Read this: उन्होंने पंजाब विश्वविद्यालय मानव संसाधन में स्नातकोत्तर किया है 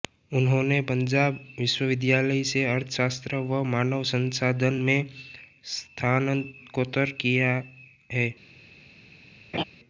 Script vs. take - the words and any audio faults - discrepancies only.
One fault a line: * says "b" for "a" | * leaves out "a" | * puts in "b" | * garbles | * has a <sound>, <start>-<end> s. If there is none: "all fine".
* puts in "से अर्थशास्त्र व"
* has a laugh, 9.5-9.6 s